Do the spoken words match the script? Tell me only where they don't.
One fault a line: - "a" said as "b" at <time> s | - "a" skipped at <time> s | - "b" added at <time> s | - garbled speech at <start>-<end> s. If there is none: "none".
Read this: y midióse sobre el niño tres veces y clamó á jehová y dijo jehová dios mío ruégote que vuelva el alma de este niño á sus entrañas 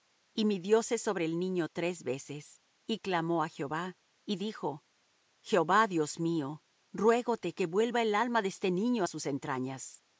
none